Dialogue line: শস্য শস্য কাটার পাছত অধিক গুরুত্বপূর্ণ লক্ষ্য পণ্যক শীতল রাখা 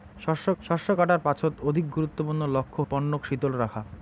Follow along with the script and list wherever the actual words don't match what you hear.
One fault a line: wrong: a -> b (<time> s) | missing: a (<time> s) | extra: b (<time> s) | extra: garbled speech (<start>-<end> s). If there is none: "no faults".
no faults